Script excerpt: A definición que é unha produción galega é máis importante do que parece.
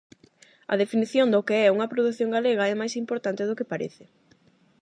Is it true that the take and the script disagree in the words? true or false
true